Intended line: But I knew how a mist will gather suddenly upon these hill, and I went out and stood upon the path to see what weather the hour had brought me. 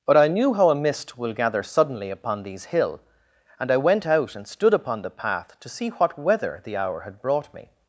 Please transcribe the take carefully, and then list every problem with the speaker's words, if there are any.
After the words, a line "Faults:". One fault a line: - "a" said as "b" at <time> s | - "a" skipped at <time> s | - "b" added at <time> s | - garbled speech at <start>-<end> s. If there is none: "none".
But I knew how a mist will gather suddenly upon these hill, and I went out and stood upon the path to see what weather the hour had brought me.
Faults:
none